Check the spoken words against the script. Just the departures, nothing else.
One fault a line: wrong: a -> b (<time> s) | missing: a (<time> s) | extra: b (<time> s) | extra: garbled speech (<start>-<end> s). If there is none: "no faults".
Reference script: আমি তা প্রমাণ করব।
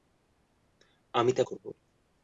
missing: প্রমাণ (1.4 s)